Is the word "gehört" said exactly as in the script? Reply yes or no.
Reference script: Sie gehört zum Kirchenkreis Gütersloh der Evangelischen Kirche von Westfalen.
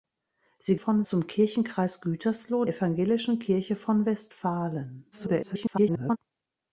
no